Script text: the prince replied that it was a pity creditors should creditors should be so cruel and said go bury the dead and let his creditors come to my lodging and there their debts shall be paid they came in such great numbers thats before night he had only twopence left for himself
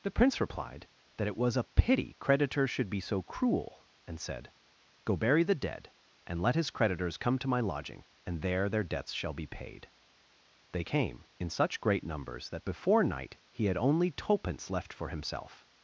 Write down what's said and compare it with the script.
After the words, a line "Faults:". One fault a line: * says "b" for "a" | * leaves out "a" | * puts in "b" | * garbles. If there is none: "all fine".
the prince replied that it was a pity creditors should be so cruel and said go bury the dead and let his creditors come to my lodging and there their debts shall be paid they came in such great numbers that before night he had only twopence left for himself
Faults:
* leaves out "creditors should"
* says "that" for "thats"